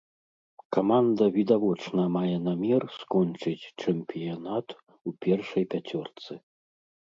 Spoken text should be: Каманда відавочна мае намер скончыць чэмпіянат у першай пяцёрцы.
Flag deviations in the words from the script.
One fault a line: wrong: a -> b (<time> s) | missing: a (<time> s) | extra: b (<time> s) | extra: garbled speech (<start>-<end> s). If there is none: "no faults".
no faults